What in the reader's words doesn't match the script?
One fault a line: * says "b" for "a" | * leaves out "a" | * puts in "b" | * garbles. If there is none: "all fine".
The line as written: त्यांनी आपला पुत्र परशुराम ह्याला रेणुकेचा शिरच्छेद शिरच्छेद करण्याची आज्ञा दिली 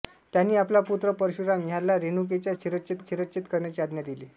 all fine